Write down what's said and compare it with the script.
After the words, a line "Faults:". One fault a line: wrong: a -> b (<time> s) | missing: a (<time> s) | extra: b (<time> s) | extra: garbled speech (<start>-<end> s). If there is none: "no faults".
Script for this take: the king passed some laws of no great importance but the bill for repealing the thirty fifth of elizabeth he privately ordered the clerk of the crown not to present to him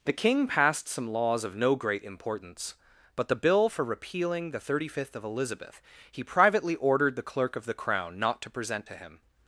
the king passed some laws of no great importance but the bill for repealing the thirty fifth of elizabeth he privately ordered the clerk of the crown not to present to him
Faults:
no faults